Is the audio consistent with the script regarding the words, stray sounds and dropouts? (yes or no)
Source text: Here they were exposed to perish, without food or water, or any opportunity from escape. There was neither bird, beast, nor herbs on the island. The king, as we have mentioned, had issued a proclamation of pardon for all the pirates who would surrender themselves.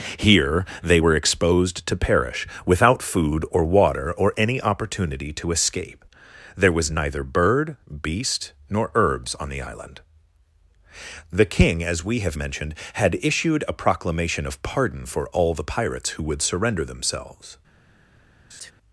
no